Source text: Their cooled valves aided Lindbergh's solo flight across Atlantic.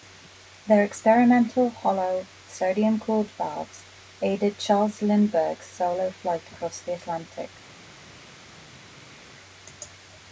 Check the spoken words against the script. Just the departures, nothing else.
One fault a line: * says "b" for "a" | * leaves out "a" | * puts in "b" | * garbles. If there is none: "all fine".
* puts in "experimental hollow sodium"
* puts in "Charles"
* puts in "the"